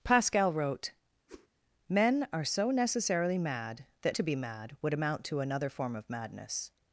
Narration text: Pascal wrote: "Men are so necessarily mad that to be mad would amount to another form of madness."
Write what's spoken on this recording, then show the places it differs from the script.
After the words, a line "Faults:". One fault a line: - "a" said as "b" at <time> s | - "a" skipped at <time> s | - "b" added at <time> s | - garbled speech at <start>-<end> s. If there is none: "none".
Pascal wrote: "Men are so necessarily mad that to be mad would amount to another form of madness."
Faults:
none